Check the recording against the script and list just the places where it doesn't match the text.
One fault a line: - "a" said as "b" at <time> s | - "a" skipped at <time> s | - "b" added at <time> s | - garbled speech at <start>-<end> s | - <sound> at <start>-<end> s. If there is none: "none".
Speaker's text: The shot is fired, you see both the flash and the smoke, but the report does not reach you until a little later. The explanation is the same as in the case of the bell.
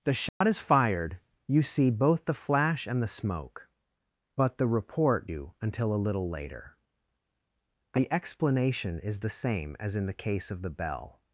- dropout at 0.3-0.4 s
- "does not reach" skipped at 5.3 s